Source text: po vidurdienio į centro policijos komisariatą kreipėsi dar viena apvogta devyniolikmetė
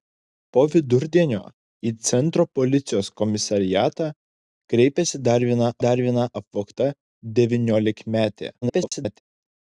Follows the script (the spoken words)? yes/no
no